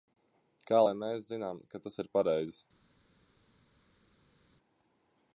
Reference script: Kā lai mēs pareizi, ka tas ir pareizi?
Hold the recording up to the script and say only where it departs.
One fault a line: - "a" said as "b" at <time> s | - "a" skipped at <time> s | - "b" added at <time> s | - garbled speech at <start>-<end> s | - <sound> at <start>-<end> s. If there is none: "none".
- "pareizi" said as "zinām" at 1.3 s